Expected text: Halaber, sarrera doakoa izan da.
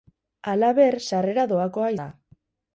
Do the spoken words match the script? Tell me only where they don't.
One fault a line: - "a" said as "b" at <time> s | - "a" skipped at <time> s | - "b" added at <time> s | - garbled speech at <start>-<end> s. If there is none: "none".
- "izan" skipped at 1.9 s